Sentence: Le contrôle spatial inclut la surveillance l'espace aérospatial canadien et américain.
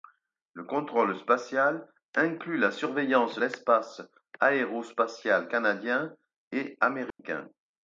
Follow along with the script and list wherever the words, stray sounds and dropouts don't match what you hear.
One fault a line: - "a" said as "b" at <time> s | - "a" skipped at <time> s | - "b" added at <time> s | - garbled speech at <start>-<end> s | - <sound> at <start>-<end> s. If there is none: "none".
- dropout at 7.1-7.2 s